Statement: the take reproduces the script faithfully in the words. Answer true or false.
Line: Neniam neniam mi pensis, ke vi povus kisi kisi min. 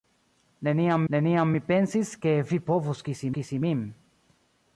true